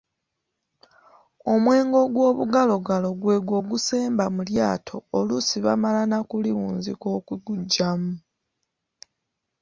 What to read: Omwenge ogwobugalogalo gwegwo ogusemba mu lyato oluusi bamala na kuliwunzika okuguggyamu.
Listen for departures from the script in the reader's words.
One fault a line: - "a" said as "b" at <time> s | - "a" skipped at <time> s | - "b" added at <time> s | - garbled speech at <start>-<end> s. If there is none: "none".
none